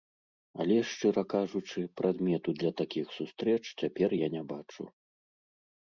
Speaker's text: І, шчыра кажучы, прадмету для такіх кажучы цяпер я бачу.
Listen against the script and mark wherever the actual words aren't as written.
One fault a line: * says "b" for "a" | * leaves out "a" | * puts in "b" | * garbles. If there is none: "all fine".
* says "Але" for "І"
* says "сустрэч" for "кажучы"
* puts in "не"